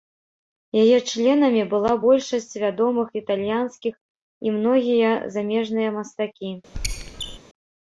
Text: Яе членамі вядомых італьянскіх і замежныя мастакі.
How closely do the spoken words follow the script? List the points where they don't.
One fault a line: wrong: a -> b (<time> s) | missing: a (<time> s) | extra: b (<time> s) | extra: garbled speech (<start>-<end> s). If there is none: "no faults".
extra: была большасць (1.7 s)
extra: многія (4.6 s)